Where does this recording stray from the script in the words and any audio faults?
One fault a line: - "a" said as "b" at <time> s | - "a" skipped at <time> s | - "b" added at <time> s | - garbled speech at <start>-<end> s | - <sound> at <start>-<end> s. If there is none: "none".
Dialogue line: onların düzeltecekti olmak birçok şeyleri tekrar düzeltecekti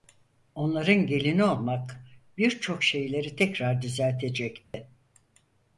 - "düzeltecekti" said as "gelini" at 1.1 s
- dropout at 4.6-4.7 s